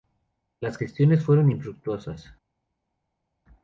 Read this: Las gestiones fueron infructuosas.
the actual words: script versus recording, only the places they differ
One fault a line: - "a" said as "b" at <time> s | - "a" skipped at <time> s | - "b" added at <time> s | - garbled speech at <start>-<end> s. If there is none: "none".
none